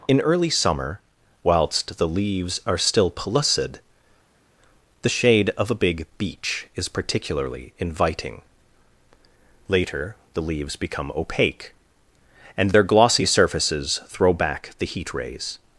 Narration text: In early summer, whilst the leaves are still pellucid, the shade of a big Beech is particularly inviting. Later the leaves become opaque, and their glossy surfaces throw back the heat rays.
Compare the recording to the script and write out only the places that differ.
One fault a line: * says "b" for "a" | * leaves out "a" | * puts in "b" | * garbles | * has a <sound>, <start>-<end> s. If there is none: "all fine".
all fine